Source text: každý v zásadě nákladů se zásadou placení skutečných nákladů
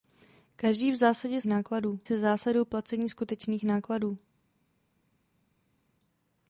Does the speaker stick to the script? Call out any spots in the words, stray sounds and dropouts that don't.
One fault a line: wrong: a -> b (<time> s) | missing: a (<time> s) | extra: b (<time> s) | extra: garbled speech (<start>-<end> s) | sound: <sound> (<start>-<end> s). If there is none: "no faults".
no faults